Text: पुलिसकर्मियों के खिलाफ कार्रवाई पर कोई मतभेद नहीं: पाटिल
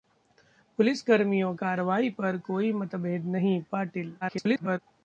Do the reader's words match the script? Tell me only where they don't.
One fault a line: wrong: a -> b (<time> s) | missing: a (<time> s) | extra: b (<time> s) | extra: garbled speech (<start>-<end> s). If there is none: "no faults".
missing: के खिलाफ (1.5 s)
extra: garbled speech (4.2-4.8 s)